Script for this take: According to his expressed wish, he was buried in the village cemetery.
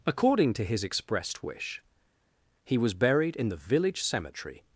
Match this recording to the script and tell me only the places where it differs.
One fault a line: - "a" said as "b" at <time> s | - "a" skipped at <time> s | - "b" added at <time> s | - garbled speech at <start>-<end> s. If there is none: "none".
none